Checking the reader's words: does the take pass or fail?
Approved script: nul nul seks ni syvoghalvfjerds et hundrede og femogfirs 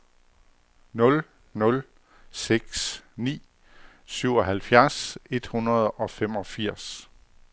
pass